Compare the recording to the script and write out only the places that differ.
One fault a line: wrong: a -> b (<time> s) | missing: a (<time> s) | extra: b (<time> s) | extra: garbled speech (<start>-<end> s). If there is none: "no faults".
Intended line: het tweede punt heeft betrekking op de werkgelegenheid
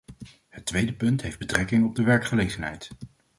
no faults